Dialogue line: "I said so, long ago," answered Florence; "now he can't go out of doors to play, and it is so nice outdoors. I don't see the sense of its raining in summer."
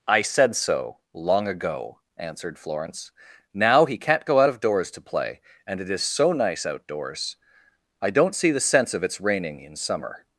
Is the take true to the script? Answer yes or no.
yes